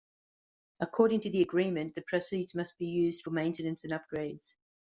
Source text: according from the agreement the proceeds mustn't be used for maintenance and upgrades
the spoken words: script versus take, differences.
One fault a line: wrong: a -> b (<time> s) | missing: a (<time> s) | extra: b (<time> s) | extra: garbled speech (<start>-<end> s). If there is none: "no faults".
wrong: from -> to (1.2 s)
wrong: mustn't -> must (2.5 s)